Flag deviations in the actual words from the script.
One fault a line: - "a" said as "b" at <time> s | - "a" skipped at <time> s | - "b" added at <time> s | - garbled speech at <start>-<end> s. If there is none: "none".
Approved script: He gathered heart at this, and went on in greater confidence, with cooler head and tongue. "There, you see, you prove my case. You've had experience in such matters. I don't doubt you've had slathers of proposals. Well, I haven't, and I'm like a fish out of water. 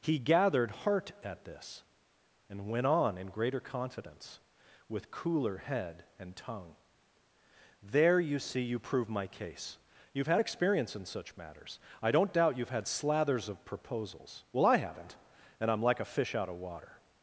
none